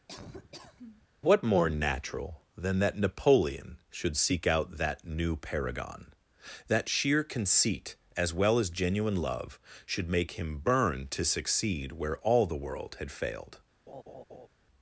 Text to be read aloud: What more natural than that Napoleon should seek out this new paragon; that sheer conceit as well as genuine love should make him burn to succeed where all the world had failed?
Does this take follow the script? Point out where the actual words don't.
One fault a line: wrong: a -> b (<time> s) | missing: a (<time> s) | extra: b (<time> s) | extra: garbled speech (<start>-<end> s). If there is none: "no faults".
wrong: this -> that (4.8 s)